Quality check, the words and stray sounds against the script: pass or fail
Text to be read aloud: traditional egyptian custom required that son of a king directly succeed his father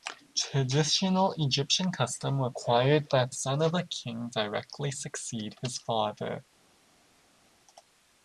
pass